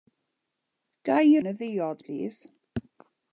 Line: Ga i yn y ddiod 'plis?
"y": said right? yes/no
yes